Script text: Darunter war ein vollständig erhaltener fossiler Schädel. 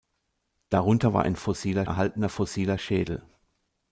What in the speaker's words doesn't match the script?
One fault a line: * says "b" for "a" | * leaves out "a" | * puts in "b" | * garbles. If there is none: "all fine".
* says "fossiler" for "vollständig"